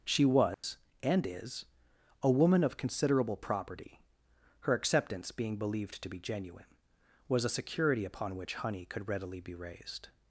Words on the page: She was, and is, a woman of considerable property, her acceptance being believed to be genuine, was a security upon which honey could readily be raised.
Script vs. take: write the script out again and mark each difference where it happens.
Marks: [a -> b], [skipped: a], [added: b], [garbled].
She was, and is, a woman of considerable property, her acceptance being believed to be genuine, was a security upon which honey could readily be raised.